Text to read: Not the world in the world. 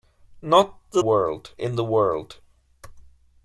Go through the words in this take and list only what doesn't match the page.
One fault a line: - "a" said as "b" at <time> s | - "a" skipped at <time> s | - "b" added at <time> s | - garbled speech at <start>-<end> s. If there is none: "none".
none